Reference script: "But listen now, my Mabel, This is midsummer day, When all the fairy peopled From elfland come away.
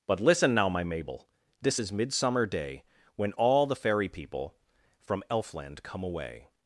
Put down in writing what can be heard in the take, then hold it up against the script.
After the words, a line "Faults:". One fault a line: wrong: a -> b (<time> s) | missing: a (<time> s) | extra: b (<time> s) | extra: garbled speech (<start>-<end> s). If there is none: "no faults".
"But listen now, my Mabel, This is midsummer day, When all the fairy people From elfland come away.
Faults:
wrong: peopled -> people (4.1 s)